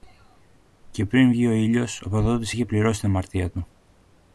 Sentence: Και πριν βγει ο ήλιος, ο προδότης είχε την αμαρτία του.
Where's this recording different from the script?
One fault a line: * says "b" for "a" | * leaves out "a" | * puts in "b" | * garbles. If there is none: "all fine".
* puts in "πληρώσει"